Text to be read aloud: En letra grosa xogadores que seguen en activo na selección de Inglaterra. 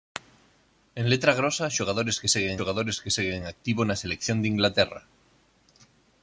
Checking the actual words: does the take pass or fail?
fail